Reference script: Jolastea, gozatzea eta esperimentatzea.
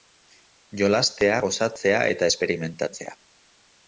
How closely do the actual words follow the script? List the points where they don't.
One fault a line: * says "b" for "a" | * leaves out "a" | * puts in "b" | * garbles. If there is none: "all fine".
all fine